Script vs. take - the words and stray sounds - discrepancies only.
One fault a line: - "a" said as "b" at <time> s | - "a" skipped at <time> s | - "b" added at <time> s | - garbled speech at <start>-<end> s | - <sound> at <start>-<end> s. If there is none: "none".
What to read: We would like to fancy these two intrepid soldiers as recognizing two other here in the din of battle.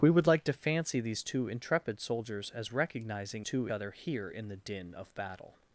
none